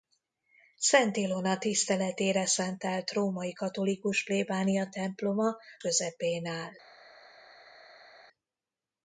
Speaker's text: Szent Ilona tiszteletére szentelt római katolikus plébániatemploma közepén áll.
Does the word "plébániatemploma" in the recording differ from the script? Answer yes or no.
no